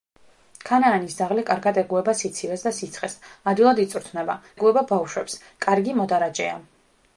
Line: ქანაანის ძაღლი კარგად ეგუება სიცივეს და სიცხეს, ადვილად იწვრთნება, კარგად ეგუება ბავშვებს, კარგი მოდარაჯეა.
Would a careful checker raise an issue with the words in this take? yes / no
yes